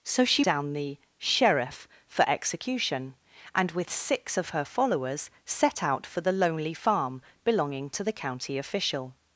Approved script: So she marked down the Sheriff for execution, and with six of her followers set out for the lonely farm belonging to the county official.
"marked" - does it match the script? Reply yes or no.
no